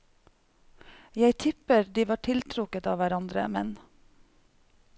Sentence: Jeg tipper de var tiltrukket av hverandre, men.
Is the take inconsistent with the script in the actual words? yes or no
no